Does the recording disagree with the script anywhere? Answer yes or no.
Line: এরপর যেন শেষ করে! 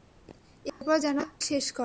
no